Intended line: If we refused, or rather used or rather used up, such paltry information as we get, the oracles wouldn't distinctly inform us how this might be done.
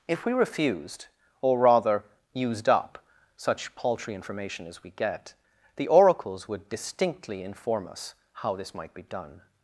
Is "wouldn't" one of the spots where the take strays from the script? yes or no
yes